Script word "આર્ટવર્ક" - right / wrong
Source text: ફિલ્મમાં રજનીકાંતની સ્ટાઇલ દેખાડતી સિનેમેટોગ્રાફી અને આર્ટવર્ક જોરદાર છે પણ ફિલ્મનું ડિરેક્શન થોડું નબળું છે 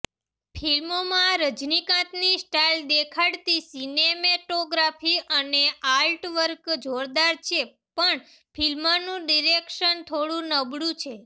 right